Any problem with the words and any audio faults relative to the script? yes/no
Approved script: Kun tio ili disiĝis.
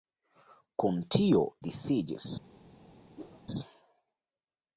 yes